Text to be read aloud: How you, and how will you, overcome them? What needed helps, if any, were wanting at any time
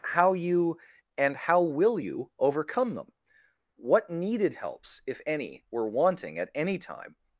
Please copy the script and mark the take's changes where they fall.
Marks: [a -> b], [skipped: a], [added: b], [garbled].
How you, and how will you, overcome them? What needed helps, if any, were wanting at any time